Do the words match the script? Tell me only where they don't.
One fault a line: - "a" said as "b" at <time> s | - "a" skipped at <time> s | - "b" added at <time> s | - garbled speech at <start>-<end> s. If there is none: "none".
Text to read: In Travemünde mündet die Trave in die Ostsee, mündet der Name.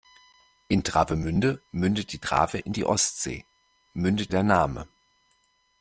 none